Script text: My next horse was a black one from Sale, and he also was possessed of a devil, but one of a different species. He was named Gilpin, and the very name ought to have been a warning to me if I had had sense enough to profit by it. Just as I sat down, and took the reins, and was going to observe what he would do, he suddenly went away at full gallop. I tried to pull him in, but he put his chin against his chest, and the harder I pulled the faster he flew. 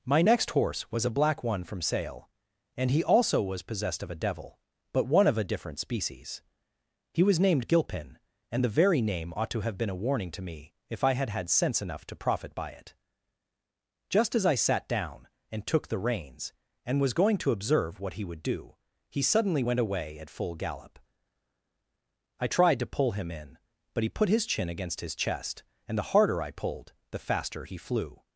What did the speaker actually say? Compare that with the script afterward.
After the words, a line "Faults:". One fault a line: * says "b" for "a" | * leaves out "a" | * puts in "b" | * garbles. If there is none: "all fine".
My next horse was a black one from Sale, and he also was possessed of a devil, but one of a different species. He was named Gilpin, and the very name ought to have been a warning to me if I had had sense enough to profit by it. Just as I sat down, and took the reins, and was going to observe what he would do, he suddenly went away at full gallop. I tried to pull him in, but he put his chin against his chest, and the harder I pulled the faster he flew.
Faults:
all fine